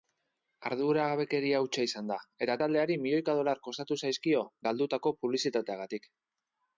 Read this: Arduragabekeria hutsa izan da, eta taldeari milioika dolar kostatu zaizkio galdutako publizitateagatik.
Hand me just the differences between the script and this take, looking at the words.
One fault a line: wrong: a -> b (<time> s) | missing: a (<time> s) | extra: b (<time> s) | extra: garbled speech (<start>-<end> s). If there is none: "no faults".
no faults